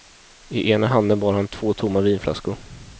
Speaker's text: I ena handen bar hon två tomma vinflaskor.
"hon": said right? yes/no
no